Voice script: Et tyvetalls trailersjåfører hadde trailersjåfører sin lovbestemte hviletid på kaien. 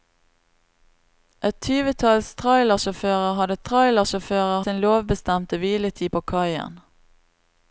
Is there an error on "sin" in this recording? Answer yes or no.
no